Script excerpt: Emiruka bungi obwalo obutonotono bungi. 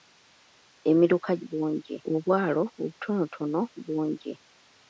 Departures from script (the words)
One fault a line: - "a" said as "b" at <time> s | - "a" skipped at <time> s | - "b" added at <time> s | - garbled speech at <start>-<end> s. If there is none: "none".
none